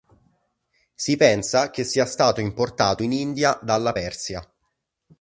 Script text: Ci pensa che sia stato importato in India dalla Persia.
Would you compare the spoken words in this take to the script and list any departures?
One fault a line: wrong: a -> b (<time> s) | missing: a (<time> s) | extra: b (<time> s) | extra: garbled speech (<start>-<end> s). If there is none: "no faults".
wrong: Ci -> Si (0.9 s)